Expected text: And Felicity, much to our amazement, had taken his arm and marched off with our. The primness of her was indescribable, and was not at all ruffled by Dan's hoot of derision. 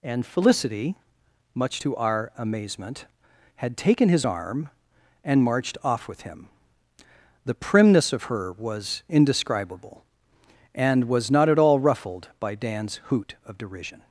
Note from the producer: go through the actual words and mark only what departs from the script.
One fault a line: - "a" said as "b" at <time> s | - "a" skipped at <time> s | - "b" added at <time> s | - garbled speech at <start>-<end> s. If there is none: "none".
- "our" said as "him" at 6.2 s